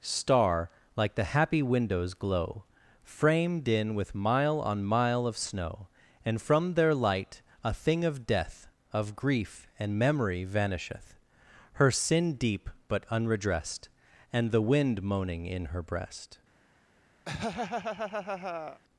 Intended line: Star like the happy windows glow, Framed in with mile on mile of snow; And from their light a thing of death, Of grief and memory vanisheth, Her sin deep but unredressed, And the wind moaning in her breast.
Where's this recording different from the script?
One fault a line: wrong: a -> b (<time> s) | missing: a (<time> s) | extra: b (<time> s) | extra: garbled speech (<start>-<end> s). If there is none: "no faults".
no faults